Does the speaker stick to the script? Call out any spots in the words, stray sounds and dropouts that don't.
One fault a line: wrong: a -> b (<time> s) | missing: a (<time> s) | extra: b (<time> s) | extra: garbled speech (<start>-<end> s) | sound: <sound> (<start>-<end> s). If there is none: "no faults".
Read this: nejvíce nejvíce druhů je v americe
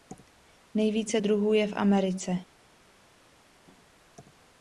missing: nejvíce (1.2 s)